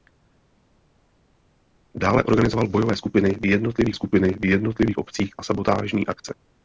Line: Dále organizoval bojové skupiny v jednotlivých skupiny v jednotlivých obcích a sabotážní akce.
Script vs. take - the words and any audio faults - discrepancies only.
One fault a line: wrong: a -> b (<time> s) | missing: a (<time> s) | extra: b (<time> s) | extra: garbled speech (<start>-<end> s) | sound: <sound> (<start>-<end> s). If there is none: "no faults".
no faults